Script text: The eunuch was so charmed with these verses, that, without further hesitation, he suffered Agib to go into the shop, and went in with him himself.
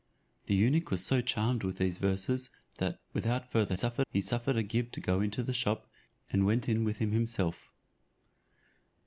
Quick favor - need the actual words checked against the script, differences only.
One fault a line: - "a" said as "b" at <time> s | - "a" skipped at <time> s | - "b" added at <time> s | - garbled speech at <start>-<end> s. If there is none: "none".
- "hesitation" said as "suffered" at 3.7 s